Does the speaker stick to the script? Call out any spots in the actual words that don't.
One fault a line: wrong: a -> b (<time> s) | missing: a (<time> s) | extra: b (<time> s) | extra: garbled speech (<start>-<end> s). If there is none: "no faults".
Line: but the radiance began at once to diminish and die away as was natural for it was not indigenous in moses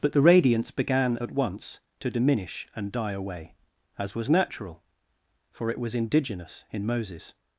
missing: not (5.9 s)